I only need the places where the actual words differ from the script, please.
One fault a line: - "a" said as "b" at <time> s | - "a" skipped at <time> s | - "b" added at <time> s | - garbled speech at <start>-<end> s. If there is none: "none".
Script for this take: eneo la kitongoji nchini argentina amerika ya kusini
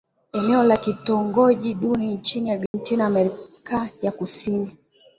- "duni" added at 1.7 s